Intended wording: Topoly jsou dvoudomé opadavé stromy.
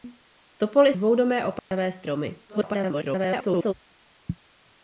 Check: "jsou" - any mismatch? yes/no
yes